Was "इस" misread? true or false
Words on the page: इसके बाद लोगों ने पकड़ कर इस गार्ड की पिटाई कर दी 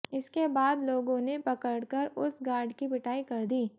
true